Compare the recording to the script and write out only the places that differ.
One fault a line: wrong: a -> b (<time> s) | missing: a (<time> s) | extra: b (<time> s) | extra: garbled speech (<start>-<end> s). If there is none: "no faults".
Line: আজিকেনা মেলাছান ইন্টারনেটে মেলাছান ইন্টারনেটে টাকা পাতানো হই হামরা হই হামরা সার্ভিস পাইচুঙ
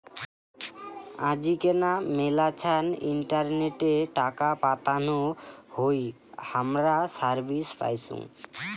missing: মেলাছান ইন্টারনেটে (3.9 s)
missing: হই হামরা (7.0 s)